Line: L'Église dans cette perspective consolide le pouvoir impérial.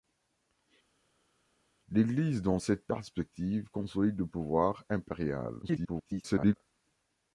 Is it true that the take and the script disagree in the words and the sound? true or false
true